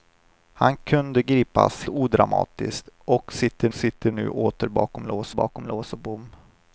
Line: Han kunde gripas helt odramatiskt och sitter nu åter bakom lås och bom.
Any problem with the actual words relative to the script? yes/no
yes